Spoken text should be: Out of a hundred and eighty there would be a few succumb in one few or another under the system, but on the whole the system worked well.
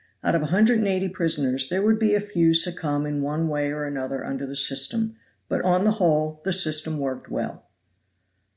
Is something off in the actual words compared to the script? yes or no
yes